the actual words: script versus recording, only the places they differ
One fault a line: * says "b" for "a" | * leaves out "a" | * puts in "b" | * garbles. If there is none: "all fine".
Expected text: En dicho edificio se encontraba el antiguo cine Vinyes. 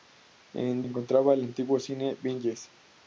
* leaves out "dicho edificio se"